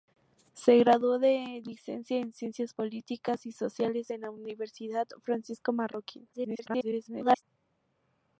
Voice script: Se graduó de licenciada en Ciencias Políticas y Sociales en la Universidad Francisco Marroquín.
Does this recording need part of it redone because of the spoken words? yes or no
yes